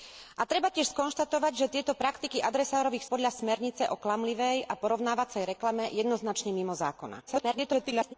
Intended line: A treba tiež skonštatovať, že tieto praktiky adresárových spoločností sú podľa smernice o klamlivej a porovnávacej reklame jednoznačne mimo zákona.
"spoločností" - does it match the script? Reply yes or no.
no